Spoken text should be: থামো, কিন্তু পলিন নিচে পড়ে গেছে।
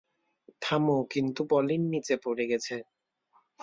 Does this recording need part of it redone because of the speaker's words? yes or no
no